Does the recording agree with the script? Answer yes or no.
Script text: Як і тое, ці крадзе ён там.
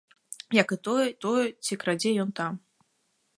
no